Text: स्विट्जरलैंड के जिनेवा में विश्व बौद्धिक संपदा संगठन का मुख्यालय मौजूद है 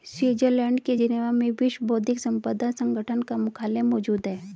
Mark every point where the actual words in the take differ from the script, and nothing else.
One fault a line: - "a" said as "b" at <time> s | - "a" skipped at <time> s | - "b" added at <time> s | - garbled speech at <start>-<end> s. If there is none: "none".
none